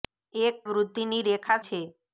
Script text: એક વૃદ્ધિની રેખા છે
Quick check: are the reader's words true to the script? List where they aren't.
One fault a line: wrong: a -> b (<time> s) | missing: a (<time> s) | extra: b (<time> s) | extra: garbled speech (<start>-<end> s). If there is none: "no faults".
no faults